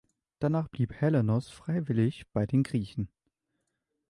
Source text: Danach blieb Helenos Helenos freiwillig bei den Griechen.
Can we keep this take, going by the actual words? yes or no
no